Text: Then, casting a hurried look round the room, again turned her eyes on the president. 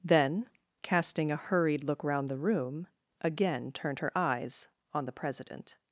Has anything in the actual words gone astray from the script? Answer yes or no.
no